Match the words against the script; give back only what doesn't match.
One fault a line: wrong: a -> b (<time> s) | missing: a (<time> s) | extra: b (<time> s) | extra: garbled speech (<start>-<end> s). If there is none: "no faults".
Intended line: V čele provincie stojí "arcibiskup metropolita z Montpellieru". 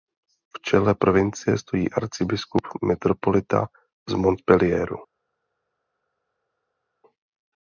no faults